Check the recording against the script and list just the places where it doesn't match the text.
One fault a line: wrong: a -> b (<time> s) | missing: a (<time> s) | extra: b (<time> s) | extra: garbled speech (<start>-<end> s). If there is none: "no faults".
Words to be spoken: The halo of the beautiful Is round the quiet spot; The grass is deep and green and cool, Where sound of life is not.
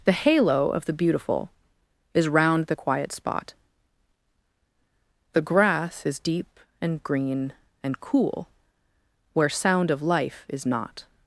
no faults